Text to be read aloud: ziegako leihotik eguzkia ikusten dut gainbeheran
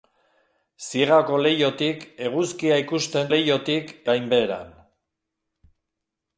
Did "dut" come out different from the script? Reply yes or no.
yes